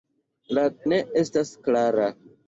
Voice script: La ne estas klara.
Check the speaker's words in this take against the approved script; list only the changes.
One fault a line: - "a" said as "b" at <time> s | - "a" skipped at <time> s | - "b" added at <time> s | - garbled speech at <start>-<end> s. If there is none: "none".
none